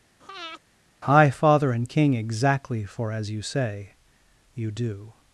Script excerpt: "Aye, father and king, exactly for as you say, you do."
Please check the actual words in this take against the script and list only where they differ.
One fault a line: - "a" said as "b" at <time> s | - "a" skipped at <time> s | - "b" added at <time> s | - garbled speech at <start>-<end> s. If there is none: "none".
- "Aye" said as "High" at 1.0 s